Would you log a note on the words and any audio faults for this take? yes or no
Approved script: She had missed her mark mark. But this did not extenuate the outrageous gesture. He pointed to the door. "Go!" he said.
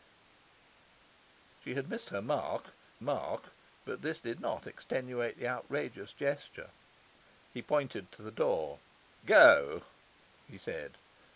no